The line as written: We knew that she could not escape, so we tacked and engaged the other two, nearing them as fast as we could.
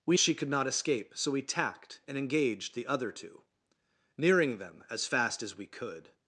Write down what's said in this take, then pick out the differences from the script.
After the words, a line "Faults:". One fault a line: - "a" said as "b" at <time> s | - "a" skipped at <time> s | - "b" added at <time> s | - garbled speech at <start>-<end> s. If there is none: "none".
We she could not escape, so we tacked and engaged the other two, nearing them as fast as we could.
Faults:
- "knew that" skipped at 0.2 s